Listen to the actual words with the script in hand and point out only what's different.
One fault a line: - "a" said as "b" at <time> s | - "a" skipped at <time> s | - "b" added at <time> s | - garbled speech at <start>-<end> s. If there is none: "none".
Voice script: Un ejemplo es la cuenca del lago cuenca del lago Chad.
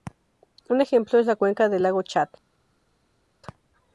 - "cuenca del lago" skipped at 2.0 s